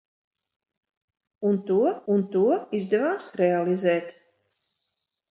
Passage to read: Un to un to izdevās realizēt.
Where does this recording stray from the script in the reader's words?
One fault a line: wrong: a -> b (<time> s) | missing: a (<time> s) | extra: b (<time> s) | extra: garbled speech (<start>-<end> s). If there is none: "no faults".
no faults